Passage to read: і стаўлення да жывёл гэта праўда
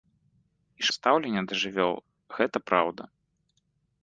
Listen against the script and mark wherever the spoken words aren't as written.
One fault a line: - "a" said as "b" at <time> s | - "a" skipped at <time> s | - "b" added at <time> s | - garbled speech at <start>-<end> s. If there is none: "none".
none